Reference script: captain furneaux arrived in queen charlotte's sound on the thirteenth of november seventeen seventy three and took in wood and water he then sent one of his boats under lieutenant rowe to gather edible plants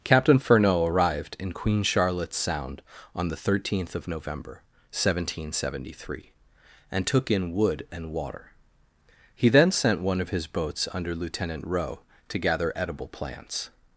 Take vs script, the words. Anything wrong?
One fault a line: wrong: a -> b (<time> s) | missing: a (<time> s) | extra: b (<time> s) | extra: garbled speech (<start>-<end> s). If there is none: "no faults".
no faults